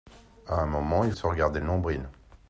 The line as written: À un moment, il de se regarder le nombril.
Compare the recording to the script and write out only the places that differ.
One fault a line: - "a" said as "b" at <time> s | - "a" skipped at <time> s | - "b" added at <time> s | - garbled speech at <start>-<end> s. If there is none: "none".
none